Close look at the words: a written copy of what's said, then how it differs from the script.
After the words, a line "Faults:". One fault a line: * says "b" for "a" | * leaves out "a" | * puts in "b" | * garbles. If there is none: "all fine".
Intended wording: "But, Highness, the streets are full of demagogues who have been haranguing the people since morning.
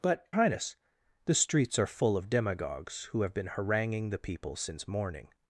"But, Highness, the streets are full of demagogues who have been haranguing the people since morning.
Faults:
all fine